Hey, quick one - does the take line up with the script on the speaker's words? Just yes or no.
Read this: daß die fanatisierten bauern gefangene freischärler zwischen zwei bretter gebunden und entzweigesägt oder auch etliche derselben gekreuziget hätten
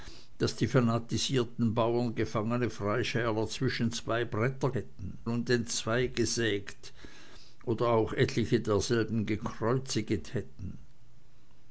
no